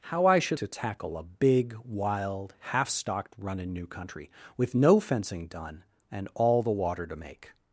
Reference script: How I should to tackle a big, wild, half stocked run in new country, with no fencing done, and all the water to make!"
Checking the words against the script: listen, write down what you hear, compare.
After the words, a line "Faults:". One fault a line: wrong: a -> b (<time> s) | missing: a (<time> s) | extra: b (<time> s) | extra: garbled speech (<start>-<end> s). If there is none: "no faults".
How I should to tackle a big, wild, half stocked run in new country, with no fencing done, and all the water to make!"
Faults:
no faults